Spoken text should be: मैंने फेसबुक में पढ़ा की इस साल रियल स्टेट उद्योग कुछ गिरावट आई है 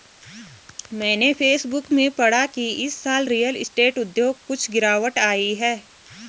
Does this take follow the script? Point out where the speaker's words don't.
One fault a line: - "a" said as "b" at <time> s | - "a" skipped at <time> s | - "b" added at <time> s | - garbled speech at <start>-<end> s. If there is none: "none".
none